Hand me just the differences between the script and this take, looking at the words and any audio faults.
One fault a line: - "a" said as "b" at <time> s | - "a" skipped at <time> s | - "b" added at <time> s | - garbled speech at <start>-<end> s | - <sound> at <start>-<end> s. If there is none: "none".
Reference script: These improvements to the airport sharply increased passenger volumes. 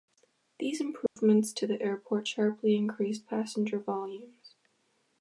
- dropout at 1.1-1.2 s